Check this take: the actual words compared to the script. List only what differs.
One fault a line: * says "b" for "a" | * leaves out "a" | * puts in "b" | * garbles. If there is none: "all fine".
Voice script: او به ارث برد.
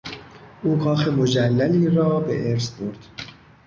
* puts in "کاخ مجللی را"